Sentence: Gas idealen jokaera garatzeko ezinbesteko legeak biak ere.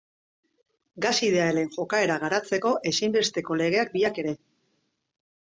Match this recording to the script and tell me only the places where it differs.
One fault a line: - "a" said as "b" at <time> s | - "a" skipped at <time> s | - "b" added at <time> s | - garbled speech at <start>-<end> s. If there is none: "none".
none